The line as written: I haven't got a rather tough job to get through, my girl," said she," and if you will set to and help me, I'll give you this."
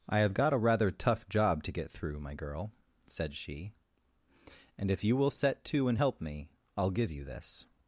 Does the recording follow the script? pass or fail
fail